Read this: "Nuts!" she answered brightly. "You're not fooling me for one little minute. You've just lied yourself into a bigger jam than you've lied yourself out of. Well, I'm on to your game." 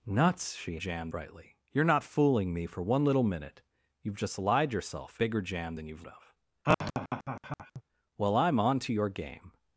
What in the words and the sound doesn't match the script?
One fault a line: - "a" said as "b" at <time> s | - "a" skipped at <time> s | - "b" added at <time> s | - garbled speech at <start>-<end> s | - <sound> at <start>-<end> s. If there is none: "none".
- "answered" said as "jam" at 0.7 s
- "into a" skipped at 5.2 s
- "lied yourself out" skipped at 6.0 s
- laugh at 6.6-7.8 s